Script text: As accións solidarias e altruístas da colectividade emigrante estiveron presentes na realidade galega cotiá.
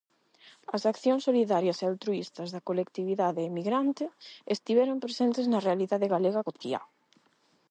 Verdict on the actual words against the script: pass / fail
pass